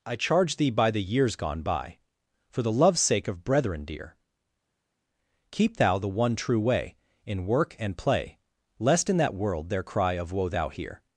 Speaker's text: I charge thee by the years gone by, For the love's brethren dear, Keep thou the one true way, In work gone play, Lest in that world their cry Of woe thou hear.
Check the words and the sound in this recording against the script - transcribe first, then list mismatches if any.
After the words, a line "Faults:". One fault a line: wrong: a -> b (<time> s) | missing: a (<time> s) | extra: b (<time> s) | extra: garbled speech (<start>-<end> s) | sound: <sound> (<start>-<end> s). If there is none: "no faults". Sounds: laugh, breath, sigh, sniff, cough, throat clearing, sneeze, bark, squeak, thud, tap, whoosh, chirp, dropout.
I charge thee by the years gone by, For the love's sake of brethren dear, Keep thou the one true way, In work and play, Lest in that world their cry Of woe thou hear.
Faults:
extra: sake of (3.0 s)
wrong: gone -> and (7.8 s)